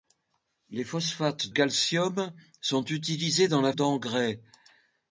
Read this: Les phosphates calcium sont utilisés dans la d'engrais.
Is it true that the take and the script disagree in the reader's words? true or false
false